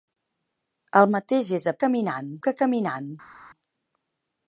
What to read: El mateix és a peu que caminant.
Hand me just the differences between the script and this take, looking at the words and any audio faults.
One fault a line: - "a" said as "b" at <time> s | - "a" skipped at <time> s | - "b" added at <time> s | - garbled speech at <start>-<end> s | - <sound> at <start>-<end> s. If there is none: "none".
- "peu" said as "caminant" at 1.9 s